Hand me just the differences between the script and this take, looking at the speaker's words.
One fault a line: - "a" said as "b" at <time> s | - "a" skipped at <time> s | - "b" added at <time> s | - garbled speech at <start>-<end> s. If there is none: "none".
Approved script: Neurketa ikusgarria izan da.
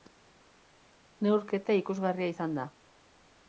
none